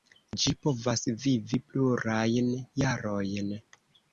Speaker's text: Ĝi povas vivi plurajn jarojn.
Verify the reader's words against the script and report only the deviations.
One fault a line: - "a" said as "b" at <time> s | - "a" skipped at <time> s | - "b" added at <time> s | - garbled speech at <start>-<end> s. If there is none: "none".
none